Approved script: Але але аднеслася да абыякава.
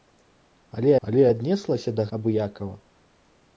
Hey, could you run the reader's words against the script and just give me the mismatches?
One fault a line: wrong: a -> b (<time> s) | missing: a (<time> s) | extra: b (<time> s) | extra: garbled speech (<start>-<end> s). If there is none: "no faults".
no faults